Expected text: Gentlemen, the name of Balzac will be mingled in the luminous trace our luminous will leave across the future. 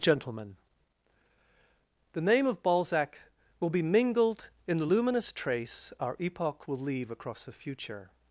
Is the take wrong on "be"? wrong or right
right